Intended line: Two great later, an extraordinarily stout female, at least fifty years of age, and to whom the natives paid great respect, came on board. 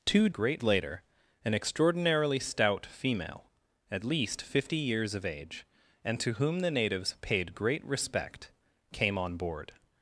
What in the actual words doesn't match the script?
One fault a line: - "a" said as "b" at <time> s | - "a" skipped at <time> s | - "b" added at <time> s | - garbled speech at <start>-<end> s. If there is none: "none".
none